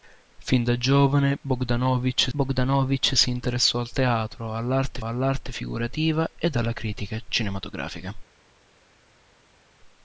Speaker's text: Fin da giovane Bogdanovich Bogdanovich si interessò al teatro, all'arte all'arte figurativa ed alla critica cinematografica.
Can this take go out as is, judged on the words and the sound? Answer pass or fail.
pass